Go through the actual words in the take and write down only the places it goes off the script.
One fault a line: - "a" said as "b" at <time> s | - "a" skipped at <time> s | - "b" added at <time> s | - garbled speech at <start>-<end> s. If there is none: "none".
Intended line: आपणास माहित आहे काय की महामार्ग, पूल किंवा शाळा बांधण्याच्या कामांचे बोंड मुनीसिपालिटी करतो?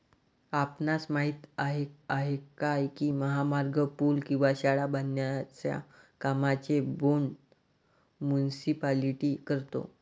- "आहे" added at 2.1 s